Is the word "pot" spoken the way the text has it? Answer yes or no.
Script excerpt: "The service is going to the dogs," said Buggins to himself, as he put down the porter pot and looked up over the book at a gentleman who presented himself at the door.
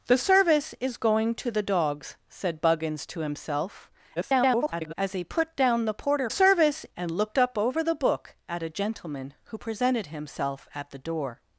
no